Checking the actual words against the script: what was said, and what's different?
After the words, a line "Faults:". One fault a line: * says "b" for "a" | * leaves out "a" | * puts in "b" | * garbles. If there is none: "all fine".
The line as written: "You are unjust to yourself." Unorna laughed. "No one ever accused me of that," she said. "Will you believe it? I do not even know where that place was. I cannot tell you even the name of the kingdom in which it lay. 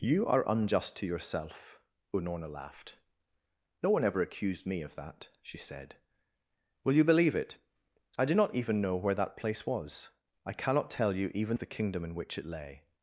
"You are unjust to yourself." Unorna laughed. "No one ever accused me of that," she said. "Will you believe it? I do not even know where that place was. I cannot tell you even of the kingdom in which it lay.
Faults:
* leaves out "the name"